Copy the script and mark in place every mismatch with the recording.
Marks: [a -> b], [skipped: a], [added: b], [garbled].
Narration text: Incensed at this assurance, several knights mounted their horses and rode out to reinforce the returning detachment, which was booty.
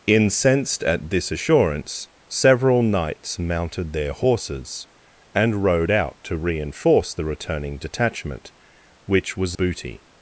Incensed at this assurance, several knights mounted their horses and rode out to reinforce the returning detachment, which was booty.